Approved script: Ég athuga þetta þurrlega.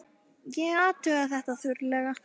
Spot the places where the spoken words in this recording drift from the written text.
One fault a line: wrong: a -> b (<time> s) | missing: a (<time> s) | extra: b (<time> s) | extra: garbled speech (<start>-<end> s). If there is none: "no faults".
no faults